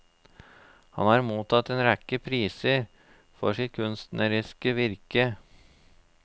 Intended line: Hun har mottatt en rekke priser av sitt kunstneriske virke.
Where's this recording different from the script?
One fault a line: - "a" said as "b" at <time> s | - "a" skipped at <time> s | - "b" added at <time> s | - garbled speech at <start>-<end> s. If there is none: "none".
- "Hun" said as "Han" at 0.9 s
- "av" said as "for" at 3.4 s